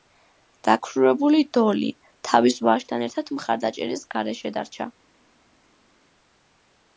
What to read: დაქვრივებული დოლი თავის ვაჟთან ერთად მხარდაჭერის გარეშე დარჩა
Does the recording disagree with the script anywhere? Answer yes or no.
no